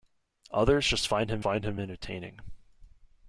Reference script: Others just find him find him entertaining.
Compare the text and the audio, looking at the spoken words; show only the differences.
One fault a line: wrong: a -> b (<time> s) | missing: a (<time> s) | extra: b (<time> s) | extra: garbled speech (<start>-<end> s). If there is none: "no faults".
no faults